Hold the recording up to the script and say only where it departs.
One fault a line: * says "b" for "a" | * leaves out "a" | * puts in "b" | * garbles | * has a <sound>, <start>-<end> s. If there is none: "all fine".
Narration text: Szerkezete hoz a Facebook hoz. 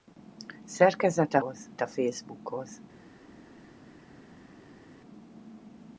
all fine